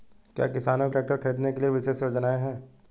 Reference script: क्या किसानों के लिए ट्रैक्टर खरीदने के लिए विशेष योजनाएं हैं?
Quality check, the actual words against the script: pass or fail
fail